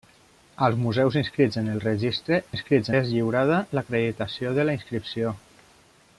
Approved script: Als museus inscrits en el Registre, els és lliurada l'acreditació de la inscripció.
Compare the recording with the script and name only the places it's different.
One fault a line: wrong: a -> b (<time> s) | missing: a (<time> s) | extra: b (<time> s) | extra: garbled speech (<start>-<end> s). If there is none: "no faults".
wrong: els -> inscrits (2.5 s)